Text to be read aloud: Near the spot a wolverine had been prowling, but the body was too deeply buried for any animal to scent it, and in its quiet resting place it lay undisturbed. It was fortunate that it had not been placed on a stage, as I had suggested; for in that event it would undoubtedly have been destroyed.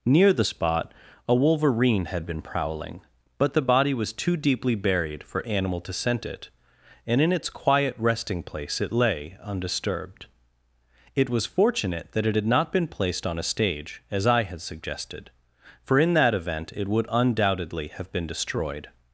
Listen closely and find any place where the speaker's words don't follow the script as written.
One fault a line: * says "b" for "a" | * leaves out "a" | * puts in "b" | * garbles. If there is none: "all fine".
* leaves out "any"